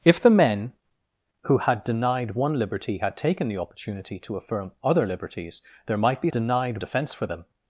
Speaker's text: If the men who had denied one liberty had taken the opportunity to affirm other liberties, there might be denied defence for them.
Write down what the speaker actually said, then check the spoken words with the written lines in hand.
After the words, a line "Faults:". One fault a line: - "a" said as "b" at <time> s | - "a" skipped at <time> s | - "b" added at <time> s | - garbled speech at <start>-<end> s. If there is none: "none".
If the men who had denied one liberty had taken the opportunity to affirm other liberties, there might be denied defence for them.
Faults:
none